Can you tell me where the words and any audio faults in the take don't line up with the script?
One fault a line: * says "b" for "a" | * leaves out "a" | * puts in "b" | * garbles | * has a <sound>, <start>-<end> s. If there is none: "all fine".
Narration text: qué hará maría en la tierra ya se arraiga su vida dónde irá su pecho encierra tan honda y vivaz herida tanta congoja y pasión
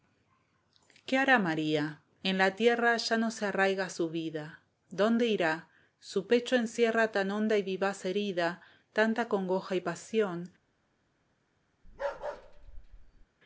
* puts in "no"
* has a bark, 11.8-13.3 s